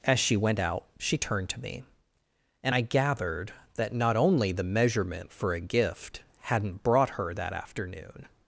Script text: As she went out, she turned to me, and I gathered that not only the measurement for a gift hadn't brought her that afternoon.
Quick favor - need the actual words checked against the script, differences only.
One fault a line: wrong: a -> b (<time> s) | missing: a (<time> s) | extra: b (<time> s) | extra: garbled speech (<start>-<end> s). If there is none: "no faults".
no faults